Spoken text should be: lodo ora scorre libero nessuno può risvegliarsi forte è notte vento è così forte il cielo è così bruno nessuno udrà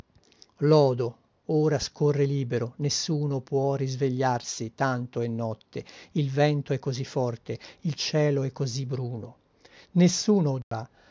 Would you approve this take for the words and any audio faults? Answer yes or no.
no